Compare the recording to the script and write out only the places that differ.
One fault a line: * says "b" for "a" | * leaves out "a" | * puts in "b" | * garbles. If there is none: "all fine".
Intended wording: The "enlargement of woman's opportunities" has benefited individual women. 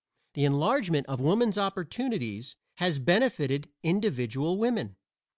all fine